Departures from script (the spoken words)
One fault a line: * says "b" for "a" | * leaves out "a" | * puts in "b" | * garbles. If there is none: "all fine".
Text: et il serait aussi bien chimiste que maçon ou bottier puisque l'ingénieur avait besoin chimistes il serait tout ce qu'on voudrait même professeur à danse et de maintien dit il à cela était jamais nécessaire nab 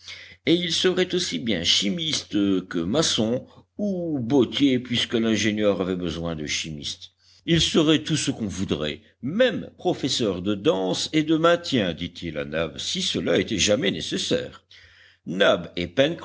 * puts in "de"
* says "de" for "à"
* puts in "nab si"